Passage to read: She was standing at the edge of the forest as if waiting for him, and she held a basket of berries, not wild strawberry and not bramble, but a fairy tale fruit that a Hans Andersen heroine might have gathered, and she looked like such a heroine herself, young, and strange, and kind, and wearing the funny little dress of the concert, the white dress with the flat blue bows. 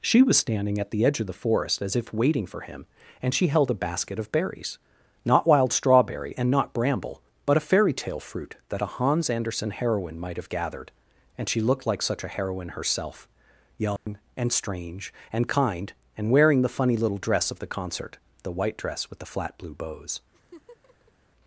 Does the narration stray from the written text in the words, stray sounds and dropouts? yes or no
yes